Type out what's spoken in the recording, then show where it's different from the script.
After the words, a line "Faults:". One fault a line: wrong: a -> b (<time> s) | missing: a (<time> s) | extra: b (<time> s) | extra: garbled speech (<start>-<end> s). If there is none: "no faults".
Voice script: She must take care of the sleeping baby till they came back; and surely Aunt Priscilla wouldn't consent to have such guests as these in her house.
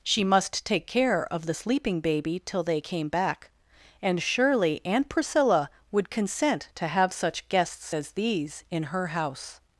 She must take care of the sleeping baby till they came back; and surely Aunt Priscilla would consent to have such guests as these in her house.
Faults:
wrong: wouldn't -> would (5.9 s)